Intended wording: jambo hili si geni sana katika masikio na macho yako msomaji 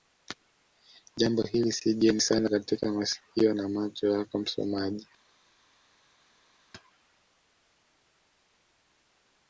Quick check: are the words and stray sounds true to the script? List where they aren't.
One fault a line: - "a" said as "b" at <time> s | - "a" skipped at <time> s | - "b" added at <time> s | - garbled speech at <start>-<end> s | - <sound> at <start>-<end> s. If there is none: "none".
none